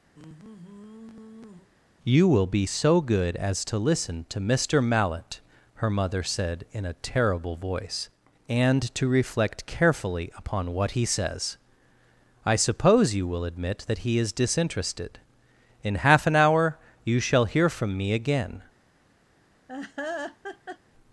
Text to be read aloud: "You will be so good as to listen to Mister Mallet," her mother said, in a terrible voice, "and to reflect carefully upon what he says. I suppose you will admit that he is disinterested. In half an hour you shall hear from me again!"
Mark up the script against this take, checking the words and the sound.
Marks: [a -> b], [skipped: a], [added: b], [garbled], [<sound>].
[sigh] "You will be so good as to listen to Mister Mallet," her mother said, in a terrible voice, "and to reflect carefully upon what he says. I suppose you will admit that he is disinterested. In half an hour you shall hear from me again!" [laugh]